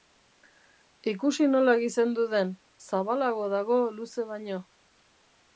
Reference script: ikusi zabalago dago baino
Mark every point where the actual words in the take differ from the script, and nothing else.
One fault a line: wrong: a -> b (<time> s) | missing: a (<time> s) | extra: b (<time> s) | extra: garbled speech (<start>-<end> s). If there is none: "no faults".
extra: nola gizendu den (1.5 s)
extra: luze (4.0 s)